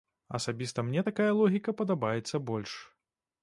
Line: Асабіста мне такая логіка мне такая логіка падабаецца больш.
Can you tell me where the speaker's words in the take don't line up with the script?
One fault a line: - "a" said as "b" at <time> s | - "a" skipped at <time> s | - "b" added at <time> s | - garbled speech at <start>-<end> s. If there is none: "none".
- "мне такая логіка" skipped at 1.8 s